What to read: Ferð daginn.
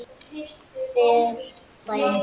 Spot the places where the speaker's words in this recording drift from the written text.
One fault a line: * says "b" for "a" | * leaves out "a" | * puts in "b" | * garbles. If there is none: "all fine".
all fine